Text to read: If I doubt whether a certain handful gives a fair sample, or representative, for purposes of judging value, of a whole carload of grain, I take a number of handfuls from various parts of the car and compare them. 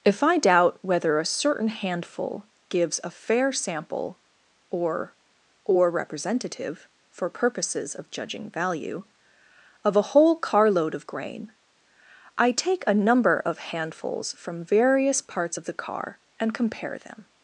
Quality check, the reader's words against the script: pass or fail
fail